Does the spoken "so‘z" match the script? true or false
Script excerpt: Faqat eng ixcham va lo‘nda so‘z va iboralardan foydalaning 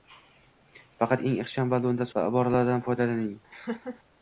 false